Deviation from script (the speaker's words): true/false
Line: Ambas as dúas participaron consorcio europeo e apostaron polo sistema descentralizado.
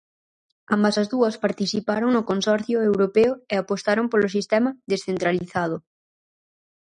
true